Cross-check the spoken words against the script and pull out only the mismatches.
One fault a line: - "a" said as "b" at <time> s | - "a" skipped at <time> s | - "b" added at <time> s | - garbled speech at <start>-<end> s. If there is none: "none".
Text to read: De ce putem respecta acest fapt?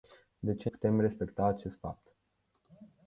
none